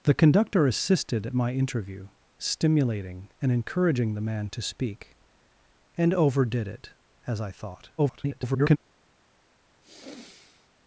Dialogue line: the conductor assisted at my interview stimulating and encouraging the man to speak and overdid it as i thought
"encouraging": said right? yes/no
yes